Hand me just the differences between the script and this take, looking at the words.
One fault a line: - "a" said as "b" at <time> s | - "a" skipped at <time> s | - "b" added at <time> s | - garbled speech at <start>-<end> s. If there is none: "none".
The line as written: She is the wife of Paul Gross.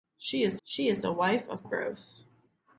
- "she is" added at 0.6 s
- "Paul" skipped at 1.6 s